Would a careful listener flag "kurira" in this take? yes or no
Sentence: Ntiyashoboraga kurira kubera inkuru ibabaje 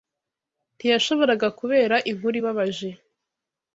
yes